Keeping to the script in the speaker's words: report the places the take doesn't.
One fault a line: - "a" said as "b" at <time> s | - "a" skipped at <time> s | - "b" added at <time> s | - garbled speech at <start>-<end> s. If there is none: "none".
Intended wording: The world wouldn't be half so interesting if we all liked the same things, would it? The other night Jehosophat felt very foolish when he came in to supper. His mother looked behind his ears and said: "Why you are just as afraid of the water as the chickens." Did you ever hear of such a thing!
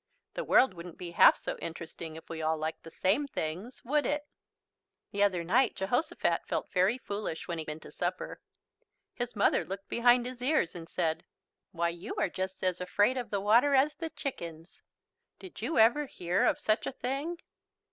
- "came" skipped at 7.7 s